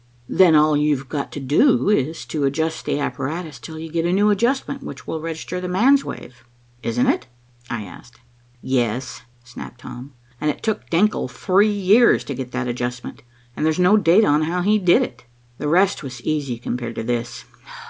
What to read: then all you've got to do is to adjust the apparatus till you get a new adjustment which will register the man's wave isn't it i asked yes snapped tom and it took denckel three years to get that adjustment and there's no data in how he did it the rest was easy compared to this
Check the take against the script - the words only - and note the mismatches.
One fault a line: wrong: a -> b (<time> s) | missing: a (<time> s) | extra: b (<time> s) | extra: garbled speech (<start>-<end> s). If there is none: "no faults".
wrong: in -> on (14.3 s)